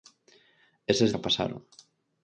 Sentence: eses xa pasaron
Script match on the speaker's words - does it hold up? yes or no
yes